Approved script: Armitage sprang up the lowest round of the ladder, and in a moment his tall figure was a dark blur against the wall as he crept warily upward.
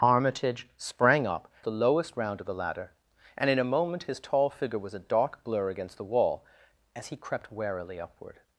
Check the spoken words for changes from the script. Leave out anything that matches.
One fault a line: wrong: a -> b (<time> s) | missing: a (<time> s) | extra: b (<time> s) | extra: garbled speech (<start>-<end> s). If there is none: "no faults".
no faults